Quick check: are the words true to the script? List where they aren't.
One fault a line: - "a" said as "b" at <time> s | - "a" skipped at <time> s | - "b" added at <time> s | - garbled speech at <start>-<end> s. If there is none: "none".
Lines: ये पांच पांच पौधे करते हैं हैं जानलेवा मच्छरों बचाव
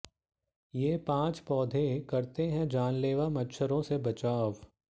- "पांच" skipped at 1.4 s
- "हैं" skipped at 2.7 s
- "से" added at 3.8 s